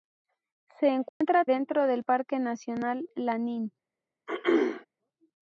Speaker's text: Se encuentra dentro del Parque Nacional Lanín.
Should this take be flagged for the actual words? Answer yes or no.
no